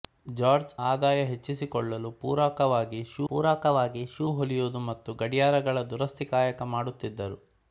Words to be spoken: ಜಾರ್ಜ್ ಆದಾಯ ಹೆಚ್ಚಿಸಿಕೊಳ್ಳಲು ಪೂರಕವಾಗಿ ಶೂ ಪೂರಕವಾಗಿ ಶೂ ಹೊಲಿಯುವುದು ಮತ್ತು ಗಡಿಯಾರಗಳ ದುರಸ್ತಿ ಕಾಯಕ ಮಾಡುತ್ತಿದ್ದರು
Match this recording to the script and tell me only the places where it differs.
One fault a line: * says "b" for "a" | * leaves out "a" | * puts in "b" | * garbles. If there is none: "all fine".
all fine